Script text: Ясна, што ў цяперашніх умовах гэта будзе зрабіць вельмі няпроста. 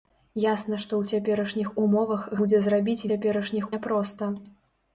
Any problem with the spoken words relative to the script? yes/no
yes